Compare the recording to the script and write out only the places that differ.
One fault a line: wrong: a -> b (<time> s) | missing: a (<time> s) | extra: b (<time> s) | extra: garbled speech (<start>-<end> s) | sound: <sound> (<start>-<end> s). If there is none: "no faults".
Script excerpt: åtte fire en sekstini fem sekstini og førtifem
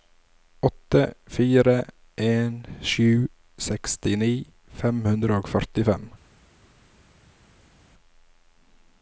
extra: sju (2.9 s)
wrong: sekstini -> hundre (5.1 s)